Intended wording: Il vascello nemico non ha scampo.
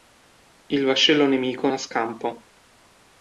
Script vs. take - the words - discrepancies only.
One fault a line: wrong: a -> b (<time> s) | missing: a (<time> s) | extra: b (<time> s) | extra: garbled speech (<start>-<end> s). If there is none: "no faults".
missing: non (1.7 s)